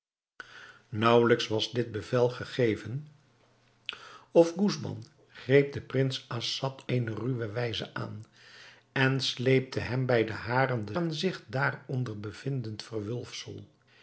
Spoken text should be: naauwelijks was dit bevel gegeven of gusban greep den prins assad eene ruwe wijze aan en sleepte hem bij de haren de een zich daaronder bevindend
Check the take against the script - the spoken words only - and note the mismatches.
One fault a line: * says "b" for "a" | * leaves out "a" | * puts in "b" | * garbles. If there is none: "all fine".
all fine